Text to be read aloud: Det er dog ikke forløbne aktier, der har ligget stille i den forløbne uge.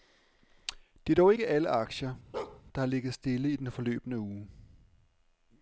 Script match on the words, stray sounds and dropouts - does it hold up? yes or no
no